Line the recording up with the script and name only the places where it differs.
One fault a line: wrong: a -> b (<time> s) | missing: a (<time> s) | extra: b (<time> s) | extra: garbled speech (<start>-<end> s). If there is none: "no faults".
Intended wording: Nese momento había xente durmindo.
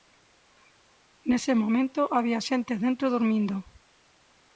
extra: dentro (2.8 s)